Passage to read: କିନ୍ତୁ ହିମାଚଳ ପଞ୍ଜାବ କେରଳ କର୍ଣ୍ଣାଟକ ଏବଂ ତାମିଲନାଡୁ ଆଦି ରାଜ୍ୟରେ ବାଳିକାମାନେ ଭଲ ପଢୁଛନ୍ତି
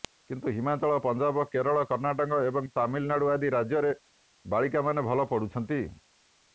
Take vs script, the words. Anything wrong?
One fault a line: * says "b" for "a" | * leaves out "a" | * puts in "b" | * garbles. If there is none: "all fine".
all fine